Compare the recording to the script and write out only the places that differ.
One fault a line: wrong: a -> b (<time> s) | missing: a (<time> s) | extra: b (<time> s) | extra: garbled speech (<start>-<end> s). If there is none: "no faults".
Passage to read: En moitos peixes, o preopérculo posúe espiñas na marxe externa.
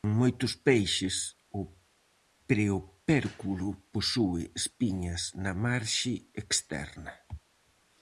no faults